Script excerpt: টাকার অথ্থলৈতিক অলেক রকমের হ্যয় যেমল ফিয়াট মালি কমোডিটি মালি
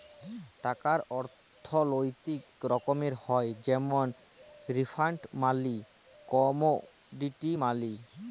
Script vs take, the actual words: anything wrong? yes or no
yes